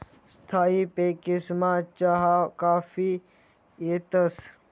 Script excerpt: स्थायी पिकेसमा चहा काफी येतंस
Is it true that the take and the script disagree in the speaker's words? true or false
false